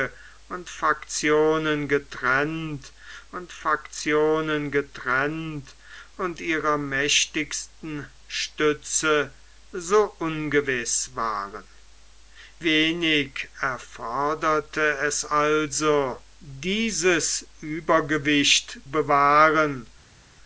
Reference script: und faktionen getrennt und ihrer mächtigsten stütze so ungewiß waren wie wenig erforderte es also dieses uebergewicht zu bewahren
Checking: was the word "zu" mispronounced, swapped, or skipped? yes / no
yes